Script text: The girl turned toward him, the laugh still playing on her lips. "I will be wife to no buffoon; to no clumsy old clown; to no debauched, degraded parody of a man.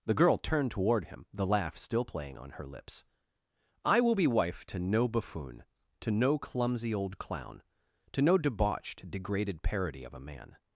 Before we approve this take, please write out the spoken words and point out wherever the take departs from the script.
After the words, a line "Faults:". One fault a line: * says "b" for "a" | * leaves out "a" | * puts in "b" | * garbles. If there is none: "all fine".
The girl turned toward him, the laugh still playing on her lips. "I will be wife to no buffoon; to no clumsy old clown; to no debauched, degraded parody of a man.
Faults:
all fine